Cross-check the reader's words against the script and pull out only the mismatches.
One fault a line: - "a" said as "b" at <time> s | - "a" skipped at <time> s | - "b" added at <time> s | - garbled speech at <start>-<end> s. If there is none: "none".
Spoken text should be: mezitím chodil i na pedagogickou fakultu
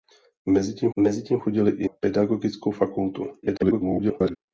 - "mezitím" added at 1.0 s
- "na" skipped at 1.9 s
- garbled speech at 3.4-4.4 s